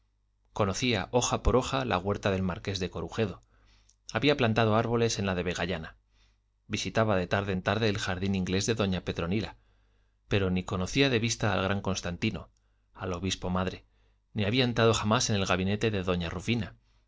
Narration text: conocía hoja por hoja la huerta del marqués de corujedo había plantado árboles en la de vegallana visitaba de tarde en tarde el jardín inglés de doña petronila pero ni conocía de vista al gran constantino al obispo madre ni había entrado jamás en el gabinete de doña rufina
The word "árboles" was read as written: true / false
true